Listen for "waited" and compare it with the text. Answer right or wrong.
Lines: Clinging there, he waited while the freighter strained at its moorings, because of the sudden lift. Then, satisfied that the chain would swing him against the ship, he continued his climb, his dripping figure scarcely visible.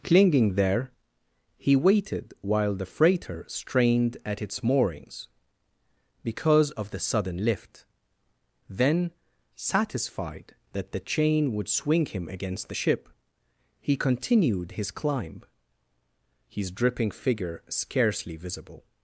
right